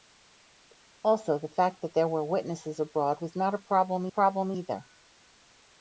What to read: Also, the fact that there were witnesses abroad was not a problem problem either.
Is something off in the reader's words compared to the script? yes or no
no